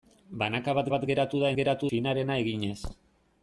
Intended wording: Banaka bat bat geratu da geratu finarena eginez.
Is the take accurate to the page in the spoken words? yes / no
yes